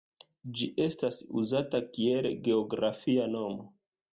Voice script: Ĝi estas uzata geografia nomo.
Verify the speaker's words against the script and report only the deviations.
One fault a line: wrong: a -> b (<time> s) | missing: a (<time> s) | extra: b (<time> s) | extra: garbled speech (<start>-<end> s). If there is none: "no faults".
extra: kiel (2.0 s)